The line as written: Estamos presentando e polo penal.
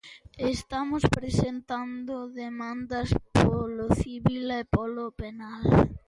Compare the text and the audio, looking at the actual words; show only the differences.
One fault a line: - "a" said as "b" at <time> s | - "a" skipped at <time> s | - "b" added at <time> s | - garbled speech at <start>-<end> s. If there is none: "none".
- "demandas polo civil" added at 2.4 s